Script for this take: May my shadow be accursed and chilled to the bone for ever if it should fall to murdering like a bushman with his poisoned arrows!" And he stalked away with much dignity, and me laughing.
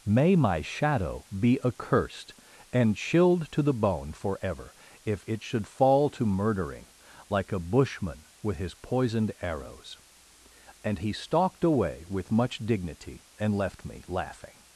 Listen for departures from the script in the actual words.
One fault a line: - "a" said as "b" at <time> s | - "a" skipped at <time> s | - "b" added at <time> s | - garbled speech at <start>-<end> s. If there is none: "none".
- "left" added at 13.5 s